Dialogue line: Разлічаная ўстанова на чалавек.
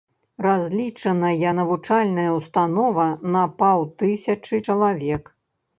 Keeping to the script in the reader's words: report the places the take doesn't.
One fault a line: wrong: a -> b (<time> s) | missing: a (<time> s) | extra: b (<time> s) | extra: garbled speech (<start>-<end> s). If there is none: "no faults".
extra: навучальная (1.6 s)
extra: паўтысячы (3.6 s)